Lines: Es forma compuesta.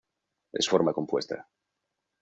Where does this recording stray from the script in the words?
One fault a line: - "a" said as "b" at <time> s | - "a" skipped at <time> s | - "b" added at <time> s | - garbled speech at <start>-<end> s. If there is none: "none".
none